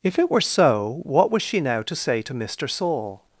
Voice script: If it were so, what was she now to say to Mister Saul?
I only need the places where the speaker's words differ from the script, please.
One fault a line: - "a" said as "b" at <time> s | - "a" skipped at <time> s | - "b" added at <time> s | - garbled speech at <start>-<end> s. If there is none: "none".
none